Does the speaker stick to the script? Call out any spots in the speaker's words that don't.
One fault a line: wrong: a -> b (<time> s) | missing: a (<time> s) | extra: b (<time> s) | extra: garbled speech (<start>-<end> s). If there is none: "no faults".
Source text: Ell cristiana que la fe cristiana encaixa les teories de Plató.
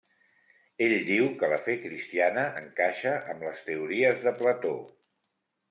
wrong: cristiana -> diu (1.1 s)
extra: amb (3.3 s)